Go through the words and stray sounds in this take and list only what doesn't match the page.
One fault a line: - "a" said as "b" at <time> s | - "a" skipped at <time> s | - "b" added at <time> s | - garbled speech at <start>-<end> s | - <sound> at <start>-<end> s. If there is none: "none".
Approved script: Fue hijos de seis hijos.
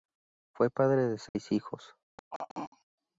- "hijos" said as "padre" at 0.7 s
- dropout at 1.3-1.4 s
- throat clearing at 2.2-2.9 s